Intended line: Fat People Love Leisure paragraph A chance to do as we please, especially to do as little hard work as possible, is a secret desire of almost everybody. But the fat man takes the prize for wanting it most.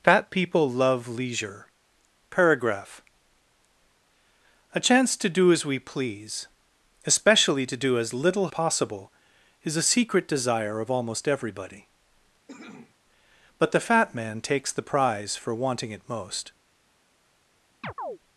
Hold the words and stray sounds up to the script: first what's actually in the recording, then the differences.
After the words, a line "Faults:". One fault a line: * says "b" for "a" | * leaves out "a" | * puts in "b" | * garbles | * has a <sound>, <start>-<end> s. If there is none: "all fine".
Fat People Love Leisure paragraph A chance to do as we please, especially to do as little possible, is a secret desire of almost everybody. But the fat man takes the prize for wanting it most.
Faults:
* leaves out "hard work as"
* has a cough, 12.5-13.0 s
* has a chirp, 17.8-18.2 s